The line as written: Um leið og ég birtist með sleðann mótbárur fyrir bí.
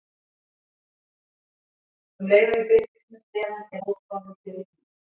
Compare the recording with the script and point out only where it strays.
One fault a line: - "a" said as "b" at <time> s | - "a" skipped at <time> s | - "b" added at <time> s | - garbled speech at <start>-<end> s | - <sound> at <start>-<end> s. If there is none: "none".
none